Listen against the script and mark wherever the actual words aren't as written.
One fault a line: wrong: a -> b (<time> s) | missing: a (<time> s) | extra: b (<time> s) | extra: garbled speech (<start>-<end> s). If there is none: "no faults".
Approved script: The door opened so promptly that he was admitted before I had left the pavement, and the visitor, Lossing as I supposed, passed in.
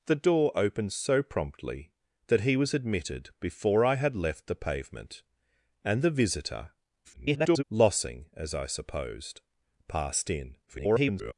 extra: garbled speech (7.0-7.6 s)
extra: garbled speech (10.7-11.3 s)